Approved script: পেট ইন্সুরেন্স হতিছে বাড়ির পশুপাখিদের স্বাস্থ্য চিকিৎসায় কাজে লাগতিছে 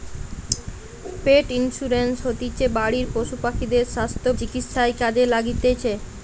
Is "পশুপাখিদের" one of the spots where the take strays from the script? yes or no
no